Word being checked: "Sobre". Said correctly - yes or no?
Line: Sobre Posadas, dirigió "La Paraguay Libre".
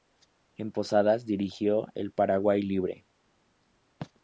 no